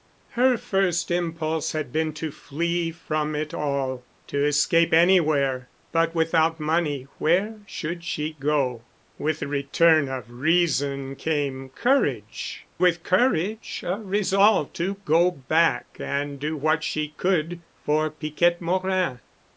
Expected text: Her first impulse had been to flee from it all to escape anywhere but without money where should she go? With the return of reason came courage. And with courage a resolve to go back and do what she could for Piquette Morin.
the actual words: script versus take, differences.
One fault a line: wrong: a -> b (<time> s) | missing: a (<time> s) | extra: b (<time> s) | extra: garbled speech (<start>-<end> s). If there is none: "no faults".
missing: And (12.7 s)